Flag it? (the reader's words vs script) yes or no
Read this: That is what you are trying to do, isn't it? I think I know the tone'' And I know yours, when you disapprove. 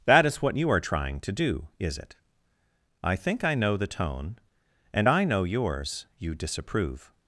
yes